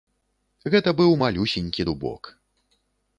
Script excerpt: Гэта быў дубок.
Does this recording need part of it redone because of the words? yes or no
yes